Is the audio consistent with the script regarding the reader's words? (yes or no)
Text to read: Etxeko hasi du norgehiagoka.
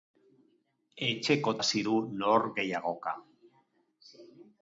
yes